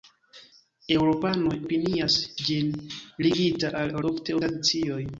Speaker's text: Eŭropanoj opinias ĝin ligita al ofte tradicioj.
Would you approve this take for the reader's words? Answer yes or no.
yes